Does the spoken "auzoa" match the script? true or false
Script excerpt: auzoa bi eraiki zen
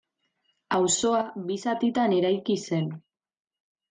true